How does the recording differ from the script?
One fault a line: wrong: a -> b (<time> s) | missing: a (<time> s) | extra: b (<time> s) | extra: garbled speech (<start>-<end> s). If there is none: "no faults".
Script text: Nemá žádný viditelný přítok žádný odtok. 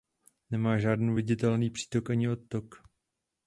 wrong: žádný -> ani (2.1 s)